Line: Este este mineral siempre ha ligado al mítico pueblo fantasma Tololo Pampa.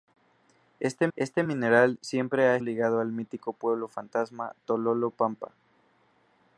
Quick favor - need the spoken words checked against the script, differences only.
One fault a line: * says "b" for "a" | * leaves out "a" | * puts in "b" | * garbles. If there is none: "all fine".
all fine